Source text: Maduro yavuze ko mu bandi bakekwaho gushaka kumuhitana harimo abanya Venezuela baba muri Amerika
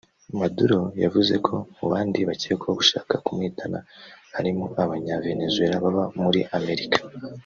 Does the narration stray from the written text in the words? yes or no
no